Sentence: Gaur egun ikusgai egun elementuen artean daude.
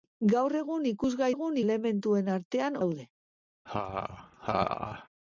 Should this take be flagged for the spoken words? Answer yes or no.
no